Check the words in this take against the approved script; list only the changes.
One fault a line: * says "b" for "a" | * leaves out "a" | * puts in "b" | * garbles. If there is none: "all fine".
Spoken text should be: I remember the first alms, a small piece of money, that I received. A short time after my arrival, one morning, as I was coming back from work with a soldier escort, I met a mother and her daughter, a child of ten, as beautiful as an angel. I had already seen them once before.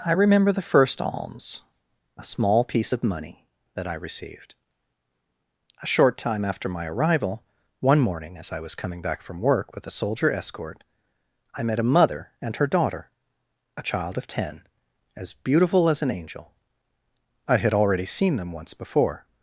all fine